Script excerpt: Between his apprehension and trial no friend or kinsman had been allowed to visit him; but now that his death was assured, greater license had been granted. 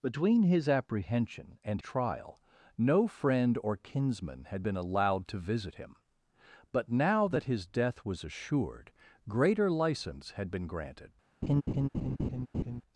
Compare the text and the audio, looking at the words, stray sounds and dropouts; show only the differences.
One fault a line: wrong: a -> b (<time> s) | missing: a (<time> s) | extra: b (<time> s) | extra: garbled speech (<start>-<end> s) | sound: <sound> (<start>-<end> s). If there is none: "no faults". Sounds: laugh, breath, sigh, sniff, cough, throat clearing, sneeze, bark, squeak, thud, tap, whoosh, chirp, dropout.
sound: laugh (11.4-12.8 s)